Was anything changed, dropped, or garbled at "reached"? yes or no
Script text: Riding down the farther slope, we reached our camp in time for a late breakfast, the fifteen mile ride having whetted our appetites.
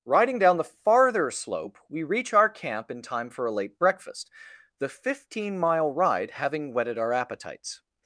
yes